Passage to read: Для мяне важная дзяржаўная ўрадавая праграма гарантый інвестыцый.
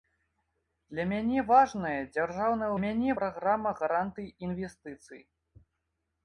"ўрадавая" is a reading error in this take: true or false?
true